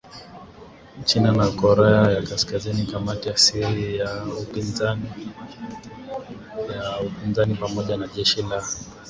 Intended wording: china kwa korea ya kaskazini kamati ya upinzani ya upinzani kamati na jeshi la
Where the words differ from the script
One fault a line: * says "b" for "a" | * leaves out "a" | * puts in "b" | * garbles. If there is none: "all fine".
* says "na" for "kwa"
* says "siri" for "upinzani"
* says "pamoja" for "kamati"